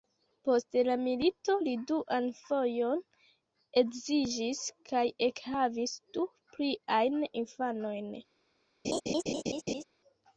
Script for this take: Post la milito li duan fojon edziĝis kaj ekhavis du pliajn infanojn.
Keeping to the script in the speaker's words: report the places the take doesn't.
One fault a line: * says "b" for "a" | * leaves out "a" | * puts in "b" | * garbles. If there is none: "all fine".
all fine